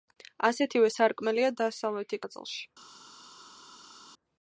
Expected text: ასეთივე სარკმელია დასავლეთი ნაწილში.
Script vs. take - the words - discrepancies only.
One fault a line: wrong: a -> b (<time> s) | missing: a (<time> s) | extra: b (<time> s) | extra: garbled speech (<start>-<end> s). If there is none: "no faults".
no faults